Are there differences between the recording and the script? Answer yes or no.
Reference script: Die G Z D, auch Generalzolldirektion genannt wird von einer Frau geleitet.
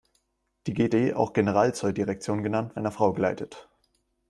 yes